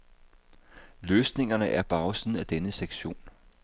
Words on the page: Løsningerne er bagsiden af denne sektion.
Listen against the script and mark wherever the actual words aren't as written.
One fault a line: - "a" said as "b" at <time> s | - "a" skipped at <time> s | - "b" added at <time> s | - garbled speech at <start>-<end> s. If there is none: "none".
none